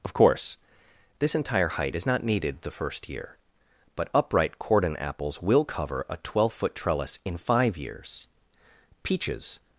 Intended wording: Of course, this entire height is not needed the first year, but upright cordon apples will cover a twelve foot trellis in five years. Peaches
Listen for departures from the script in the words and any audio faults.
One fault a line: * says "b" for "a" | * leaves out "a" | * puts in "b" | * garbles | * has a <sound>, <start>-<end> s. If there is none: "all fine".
all fine